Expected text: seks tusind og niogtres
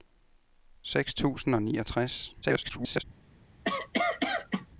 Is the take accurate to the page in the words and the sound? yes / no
no